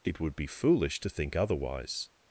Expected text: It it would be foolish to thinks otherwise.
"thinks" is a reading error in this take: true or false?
true